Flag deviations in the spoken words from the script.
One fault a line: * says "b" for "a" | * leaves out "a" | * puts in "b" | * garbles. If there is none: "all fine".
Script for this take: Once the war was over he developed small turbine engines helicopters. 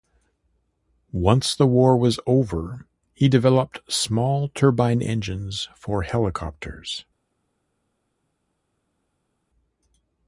* puts in "for"